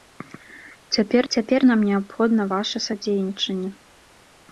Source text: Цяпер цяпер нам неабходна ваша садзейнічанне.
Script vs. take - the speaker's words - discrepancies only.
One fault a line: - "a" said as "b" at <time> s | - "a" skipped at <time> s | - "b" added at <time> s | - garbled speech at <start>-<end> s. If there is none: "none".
none